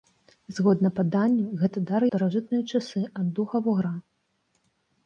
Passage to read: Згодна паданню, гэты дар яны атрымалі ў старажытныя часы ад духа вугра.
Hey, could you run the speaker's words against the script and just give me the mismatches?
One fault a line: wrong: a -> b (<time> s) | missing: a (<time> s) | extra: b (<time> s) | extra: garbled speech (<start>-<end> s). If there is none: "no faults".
missing: яны атрымалі ў (2.0 s)